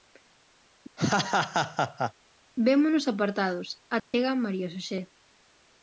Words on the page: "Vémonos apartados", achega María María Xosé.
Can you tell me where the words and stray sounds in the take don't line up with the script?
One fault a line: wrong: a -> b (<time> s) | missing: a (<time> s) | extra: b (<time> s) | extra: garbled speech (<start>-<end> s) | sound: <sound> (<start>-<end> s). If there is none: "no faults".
sound: laugh (1.0-2.1 s)
sound: dropout (4.0-4.1 s)
missing: María (4.7 s)